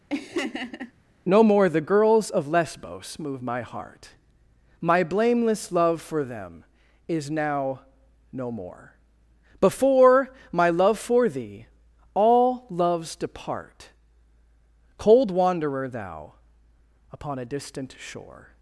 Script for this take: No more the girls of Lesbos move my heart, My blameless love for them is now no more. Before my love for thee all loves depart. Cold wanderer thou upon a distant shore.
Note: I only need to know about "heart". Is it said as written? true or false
true